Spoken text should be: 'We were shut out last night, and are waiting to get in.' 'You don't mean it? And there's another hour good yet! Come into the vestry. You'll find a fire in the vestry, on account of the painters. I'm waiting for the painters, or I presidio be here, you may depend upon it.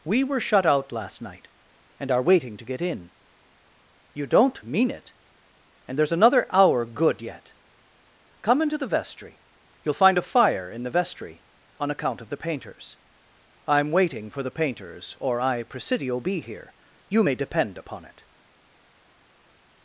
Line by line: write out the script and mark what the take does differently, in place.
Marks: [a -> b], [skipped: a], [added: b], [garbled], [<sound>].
'We were shut out last night, and are waiting to get in.' 'You don't mean it? And there's another hour good yet! Come into the vestry. You'll find a fire in the vestry, on account of the painters. I'm waiting for the painters, or I presidio be here, you may depend upon it.